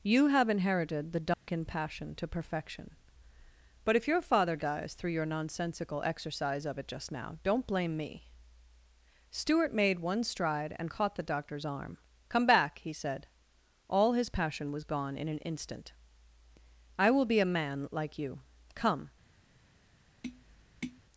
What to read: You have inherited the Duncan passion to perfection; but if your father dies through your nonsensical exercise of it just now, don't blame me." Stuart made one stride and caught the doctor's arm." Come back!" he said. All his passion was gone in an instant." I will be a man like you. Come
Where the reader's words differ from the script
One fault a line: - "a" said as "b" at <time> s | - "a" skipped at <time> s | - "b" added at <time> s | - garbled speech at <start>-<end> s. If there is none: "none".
none